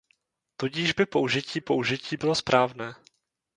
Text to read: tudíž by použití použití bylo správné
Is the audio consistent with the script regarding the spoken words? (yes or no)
yes